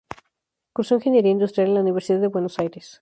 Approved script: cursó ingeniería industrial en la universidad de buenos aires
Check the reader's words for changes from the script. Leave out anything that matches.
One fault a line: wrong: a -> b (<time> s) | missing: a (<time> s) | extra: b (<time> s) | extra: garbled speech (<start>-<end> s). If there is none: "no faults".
no faults